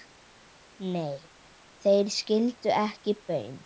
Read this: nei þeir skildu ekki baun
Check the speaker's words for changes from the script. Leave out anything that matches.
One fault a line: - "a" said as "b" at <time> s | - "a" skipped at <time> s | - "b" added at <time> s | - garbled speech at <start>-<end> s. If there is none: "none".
none